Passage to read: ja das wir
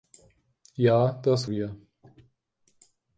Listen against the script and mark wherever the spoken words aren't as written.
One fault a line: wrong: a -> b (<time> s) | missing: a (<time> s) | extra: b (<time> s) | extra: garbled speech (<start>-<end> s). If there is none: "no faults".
no faults